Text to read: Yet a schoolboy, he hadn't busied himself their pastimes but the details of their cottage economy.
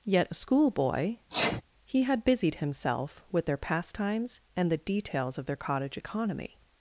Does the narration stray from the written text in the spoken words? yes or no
yes